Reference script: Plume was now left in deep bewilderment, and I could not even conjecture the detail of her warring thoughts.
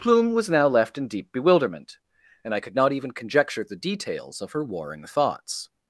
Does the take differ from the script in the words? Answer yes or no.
yes